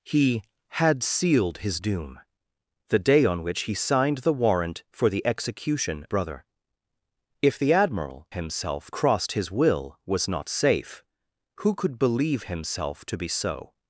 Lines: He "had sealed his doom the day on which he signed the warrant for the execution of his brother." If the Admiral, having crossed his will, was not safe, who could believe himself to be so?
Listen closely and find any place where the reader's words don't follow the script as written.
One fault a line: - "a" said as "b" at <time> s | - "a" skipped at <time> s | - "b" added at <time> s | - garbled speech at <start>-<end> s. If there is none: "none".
- "of his" skipped at 6.1 s
- "having" said as "himself" at 8.3 s